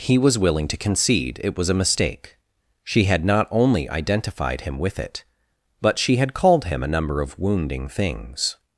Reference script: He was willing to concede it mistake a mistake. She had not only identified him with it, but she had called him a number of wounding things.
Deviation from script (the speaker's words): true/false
true